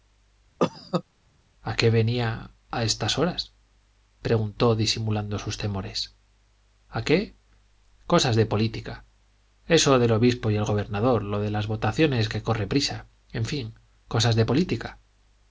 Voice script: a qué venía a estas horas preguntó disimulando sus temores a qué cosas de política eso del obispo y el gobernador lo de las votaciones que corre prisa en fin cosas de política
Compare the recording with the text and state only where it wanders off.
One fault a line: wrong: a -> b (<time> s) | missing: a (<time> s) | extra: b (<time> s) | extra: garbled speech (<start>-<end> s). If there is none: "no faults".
no faults